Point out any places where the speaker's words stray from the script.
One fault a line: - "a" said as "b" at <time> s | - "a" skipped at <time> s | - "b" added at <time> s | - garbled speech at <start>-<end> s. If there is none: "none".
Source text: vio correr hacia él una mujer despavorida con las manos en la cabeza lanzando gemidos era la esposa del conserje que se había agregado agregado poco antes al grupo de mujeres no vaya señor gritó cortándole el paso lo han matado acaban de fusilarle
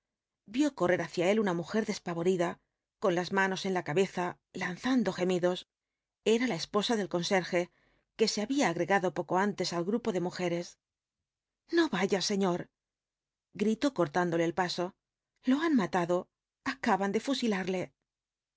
- "agregado" skipped at 9.1 s